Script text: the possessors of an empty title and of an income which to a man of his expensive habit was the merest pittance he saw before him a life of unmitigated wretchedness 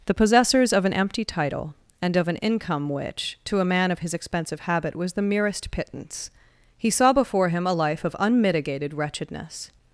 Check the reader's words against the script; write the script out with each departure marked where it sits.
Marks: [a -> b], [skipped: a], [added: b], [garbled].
the possessors of an empty title and of an income which to a man of his expensive habit was the merest pittance he saw before him a life of unmitigated wretchedness